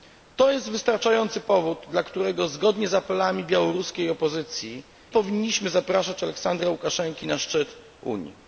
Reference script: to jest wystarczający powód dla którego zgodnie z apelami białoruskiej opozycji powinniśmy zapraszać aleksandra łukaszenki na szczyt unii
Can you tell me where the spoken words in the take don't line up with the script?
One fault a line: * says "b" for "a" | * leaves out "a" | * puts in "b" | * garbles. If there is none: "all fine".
all fine